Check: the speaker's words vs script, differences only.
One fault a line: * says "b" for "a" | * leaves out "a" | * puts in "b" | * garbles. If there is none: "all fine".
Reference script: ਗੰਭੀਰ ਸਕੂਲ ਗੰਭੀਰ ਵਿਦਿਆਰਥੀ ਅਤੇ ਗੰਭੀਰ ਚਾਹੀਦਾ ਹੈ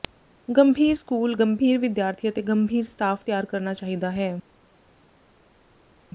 * puts in "ਸਟਾਫ ਤਿਆਰ ਕਰਨਾ"